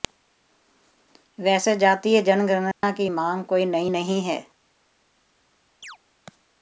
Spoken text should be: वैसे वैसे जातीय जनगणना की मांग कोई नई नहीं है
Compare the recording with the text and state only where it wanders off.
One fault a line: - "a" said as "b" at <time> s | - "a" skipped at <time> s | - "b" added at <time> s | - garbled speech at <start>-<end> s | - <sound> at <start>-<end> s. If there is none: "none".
- "वैसे" skipped at 1.8 s
- dropout at 2.7-2.8 s
- chirp at 5.8-6.0 s